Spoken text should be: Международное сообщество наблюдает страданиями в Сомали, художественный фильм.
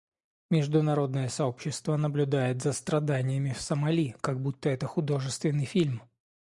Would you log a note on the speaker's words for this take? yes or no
yes